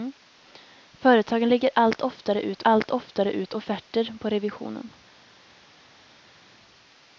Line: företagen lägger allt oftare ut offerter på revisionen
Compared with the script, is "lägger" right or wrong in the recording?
right